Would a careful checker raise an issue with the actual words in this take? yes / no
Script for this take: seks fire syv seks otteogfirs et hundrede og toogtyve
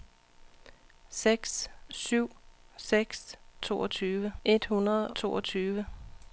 yes